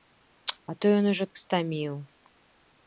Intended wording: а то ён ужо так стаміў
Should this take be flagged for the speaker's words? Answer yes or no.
yes